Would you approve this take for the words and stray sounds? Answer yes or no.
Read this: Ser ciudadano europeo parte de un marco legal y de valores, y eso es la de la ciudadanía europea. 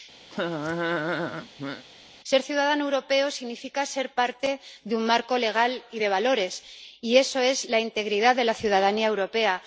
no